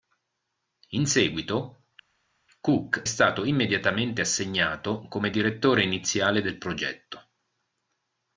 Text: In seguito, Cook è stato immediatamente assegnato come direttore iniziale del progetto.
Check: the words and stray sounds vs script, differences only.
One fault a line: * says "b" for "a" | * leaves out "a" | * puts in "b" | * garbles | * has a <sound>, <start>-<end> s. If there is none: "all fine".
* leaves out "è"